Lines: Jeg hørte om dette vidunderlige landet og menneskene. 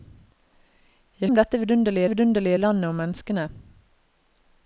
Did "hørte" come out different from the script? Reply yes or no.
yes